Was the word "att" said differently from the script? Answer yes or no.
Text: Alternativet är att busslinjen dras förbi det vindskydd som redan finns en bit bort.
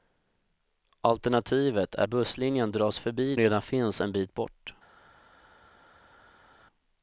yes